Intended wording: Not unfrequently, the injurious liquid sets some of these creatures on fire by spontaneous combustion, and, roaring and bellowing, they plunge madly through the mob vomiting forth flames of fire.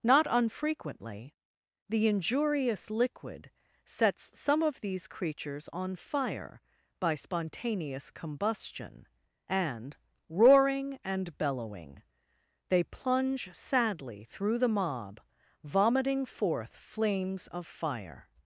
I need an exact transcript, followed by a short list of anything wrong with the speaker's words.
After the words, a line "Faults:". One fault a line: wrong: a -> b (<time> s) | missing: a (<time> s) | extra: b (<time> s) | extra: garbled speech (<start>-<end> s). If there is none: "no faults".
Not unfrequently, the injurious liquid sets some of these creatures on fire by spontaneous combustion, and, roaring and bellowing, they plunge sadly through the mob vomiting forth flames of fire.
Faults:
wrong: madly -> sadly (13.5 s)